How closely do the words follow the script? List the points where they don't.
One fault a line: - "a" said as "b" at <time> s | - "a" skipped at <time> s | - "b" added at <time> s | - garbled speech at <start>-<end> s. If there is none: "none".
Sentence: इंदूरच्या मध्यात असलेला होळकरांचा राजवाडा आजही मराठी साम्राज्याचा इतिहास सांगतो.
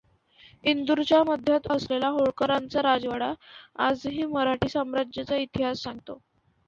none